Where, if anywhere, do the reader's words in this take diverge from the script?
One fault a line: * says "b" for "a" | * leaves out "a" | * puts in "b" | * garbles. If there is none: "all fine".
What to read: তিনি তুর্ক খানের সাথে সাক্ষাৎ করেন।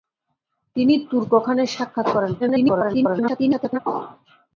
* leaves out "সাথে"
* garbles